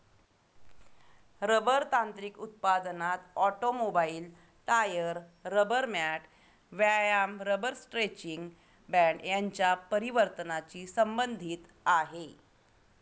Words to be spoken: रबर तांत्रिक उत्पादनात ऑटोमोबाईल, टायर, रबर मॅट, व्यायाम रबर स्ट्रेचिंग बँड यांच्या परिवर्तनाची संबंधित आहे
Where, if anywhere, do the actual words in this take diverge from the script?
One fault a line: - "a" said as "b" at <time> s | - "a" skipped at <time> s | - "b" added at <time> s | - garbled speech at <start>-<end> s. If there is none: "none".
none